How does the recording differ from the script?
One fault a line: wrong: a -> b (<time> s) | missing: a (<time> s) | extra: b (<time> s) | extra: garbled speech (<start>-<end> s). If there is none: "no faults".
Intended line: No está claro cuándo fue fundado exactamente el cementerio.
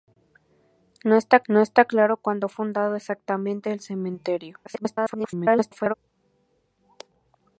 extra: no está (1.5 s)
missing: fue (2.5 s)
extra: garbled speech (4.6-5.9 s)